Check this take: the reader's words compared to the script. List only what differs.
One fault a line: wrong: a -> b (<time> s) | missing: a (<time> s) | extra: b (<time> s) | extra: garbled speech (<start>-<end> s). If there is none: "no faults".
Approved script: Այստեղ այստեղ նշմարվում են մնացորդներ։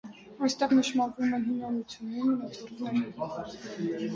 missing: այստեղ (0.7 s)
extra: հին ամրությունների (1.5 s)